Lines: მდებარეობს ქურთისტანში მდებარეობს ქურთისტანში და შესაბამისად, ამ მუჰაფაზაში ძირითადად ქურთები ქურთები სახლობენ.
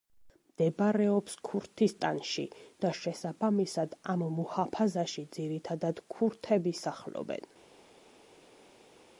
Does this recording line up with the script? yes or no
no